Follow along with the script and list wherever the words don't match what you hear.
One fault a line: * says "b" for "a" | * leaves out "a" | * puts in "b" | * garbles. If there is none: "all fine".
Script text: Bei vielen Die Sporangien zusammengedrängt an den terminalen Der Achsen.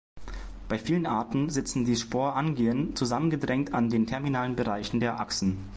* puts in "Arten sitzen"
* puts in "Bereichen"